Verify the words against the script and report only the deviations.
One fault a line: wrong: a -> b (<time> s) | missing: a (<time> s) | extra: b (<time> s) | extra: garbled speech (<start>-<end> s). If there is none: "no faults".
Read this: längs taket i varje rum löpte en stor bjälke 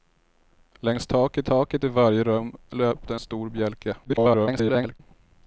extra: taket (1.4 s)
missing: en (3.1 s)
extra: garbled speech (4.0-5.0 s)